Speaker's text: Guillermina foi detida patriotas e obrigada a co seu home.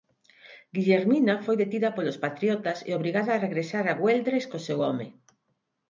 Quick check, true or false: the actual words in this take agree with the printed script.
false